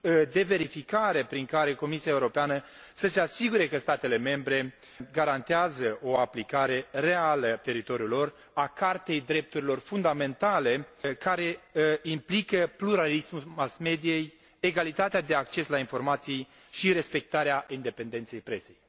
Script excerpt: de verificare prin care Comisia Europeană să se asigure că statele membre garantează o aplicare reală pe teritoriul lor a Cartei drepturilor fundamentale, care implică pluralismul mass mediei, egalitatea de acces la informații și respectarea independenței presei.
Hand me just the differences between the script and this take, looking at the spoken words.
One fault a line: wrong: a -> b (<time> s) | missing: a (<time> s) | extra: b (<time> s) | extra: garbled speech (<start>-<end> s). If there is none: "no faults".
missing: pe (7.6 s)